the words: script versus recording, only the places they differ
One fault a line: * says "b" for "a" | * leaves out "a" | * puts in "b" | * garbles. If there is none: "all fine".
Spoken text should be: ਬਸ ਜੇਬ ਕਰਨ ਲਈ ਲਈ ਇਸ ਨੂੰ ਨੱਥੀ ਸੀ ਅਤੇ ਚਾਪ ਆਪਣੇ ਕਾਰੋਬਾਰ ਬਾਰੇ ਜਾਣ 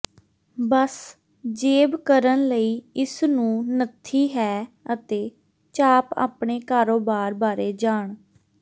* leaves out "ਲਈ"
* says "ਹੈ" for "ਸੀ"